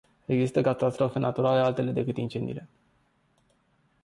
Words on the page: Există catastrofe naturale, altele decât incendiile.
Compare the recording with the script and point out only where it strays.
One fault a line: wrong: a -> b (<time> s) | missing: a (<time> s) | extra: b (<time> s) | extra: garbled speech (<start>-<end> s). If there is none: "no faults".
no faults